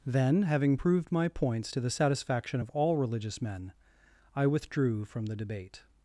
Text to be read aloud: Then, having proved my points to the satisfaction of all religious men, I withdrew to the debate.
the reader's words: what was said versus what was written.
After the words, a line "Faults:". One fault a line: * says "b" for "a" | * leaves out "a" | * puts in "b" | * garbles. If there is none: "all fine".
Then, having proved my points to the satisfaction of all religious men, I withdrew from the debate.
Faults:
* says "from" for "to"